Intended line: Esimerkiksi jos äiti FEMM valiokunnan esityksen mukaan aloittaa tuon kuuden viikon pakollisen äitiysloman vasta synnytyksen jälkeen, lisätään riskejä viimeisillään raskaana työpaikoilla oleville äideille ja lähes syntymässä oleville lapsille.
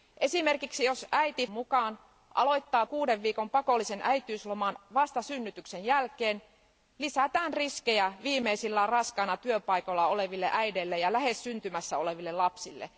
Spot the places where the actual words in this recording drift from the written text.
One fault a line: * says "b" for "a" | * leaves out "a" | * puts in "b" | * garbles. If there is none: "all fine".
* leaves out "FEMM valiokunnan esityksen"
* leaves out "tuon"